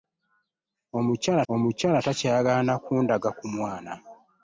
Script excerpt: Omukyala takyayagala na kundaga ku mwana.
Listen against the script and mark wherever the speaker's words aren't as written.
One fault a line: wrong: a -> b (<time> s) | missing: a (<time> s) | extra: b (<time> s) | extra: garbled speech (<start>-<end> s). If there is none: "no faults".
extra: omukyala (1.5 s)